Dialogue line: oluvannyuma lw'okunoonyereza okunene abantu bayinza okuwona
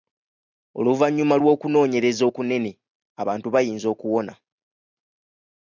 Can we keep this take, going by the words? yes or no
yes